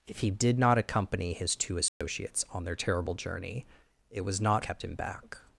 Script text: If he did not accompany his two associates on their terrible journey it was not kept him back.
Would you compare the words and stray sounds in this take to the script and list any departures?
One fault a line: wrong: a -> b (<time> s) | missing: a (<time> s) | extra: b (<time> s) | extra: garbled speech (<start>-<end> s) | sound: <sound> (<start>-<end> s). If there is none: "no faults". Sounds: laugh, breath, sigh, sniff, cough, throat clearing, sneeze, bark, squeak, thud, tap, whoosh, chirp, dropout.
sound: dropout (1.9-2.0 s)